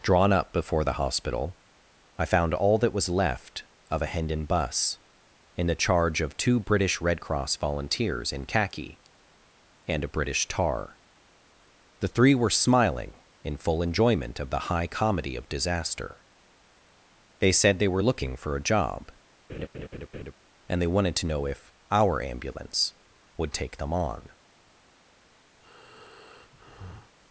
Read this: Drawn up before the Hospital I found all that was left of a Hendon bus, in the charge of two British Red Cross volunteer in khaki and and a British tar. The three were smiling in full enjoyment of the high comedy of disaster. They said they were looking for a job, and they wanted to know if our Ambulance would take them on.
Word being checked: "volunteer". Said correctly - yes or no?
no